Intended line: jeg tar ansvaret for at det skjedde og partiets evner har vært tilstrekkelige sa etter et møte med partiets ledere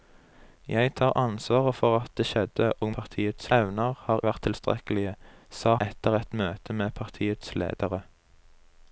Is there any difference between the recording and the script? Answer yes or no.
no